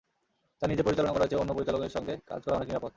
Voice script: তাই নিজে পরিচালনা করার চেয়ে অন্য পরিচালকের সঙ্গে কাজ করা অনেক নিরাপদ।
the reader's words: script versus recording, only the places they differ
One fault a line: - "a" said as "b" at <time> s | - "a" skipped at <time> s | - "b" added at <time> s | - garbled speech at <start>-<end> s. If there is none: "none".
none